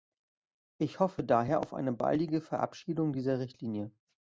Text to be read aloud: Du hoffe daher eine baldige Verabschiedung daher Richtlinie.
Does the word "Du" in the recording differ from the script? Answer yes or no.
yes